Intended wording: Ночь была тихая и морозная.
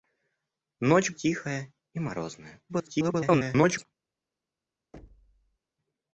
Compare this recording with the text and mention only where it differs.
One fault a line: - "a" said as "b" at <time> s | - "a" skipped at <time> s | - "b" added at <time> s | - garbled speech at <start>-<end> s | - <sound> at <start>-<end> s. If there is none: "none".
- "была" skipped at 1.1 s
- garbled speech at 2.7-3.9 s
- thud at 4.9-5.6 s